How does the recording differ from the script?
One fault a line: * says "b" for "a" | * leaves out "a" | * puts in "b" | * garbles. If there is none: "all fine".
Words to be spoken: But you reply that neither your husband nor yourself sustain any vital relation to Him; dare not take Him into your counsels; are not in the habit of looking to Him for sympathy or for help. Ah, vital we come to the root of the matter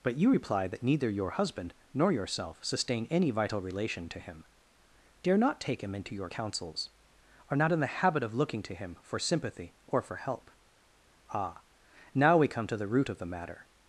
* says "now" for "vital"